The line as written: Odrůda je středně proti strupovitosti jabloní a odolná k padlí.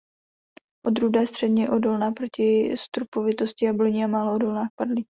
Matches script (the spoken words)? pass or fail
fail